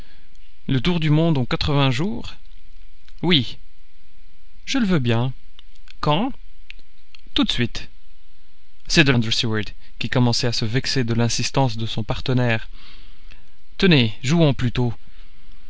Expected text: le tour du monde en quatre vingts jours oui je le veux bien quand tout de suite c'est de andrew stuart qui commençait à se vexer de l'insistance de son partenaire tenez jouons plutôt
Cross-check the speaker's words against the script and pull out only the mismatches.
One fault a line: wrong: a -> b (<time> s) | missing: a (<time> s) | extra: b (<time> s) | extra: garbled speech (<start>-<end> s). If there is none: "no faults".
no faults